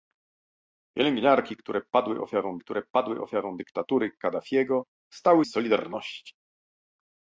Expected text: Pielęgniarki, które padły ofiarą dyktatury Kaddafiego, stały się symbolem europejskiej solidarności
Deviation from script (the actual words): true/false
true